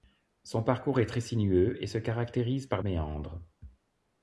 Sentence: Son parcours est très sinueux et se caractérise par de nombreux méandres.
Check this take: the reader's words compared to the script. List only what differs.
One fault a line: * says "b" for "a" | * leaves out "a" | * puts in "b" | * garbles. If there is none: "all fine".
* leaves out "de nombreux"